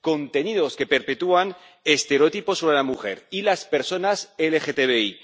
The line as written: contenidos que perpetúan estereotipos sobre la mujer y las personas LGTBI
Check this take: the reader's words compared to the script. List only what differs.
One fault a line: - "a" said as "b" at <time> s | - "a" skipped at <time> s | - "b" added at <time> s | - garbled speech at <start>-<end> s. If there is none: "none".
none